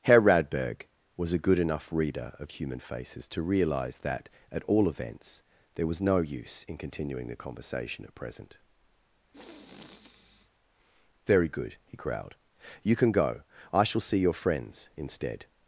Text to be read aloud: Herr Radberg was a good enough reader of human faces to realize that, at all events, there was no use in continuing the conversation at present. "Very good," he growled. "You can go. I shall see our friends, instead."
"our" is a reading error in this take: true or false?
true